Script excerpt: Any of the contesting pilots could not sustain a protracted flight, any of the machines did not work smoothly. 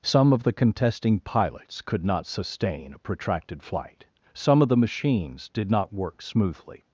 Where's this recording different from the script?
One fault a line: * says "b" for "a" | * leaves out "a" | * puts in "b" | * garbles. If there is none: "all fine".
* says "Some" for "Any"
* says "some" for "any"